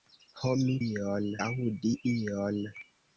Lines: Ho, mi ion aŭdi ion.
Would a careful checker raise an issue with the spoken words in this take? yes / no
no